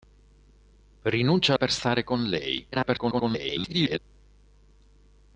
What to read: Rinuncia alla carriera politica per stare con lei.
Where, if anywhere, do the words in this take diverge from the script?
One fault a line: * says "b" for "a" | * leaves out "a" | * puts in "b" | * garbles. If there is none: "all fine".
* leaves out "alla carriera politica"
* garbles